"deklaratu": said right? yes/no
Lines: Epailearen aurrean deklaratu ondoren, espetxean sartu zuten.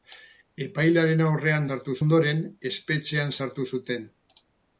no